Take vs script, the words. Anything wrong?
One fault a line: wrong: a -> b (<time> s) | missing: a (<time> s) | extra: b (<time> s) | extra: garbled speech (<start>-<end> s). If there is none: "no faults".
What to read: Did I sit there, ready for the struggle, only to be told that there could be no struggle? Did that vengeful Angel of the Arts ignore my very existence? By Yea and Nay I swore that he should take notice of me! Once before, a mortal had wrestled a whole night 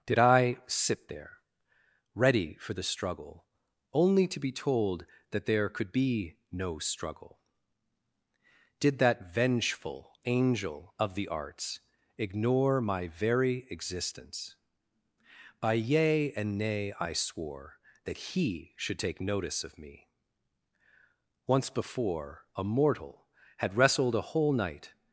no faults